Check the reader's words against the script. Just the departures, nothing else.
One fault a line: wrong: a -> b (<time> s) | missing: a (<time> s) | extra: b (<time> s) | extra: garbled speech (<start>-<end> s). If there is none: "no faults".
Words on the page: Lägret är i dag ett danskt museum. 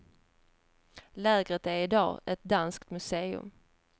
no faults